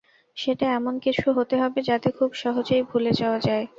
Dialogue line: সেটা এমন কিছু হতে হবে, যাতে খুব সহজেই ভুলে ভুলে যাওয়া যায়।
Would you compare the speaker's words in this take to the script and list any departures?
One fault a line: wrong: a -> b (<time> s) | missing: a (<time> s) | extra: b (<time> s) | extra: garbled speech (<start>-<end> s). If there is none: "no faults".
missing: ভুলে (3.1 s)